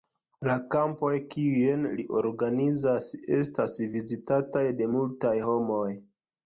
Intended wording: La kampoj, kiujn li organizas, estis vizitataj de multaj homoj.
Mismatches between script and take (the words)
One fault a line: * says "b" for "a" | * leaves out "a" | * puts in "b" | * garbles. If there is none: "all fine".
* says "estas" for "estis"